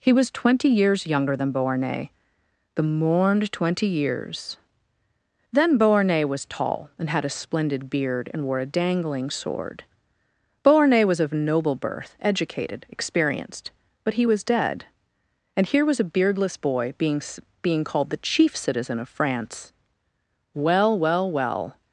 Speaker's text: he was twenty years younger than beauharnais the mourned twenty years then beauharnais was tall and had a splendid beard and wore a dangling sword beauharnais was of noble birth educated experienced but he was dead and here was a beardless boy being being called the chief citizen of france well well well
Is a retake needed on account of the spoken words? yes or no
no